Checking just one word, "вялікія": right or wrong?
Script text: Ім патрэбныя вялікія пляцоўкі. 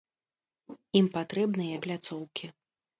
wrong